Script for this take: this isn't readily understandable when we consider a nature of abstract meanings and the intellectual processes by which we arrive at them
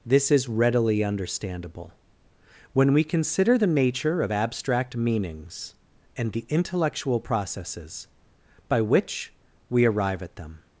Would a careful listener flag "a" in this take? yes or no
yes